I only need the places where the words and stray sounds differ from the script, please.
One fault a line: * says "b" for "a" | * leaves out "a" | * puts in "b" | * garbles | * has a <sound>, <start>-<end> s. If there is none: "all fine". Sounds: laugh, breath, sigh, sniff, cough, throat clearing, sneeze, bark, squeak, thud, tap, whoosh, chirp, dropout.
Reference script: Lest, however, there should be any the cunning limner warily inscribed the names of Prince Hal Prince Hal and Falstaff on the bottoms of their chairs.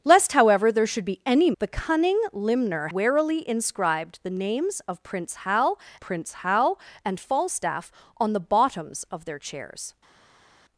all fine